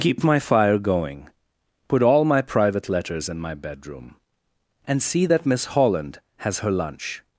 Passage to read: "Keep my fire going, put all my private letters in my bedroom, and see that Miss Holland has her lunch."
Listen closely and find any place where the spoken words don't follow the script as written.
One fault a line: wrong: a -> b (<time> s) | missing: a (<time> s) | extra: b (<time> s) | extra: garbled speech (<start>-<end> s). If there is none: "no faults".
no faults